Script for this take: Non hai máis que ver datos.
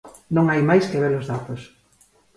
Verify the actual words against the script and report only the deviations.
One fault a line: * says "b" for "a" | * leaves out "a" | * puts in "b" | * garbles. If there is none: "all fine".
* puts in "os"